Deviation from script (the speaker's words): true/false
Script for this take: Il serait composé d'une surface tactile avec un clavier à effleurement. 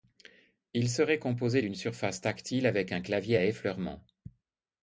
false